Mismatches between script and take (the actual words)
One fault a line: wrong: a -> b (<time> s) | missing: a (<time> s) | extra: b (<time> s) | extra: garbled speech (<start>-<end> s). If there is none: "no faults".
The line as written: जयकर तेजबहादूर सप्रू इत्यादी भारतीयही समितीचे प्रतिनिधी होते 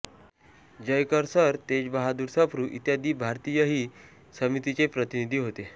extra: सर (1.3 s)